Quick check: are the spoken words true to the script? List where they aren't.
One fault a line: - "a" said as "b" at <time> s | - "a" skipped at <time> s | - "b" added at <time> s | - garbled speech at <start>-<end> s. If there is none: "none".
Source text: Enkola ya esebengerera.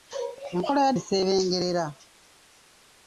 none